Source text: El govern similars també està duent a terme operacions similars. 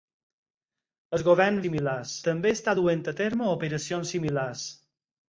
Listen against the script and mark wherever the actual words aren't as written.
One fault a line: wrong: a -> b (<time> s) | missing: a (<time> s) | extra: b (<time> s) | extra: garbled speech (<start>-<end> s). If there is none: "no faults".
no faults